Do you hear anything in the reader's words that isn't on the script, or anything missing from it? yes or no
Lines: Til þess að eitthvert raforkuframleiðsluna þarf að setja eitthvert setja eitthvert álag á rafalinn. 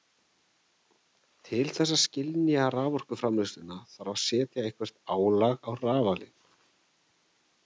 yes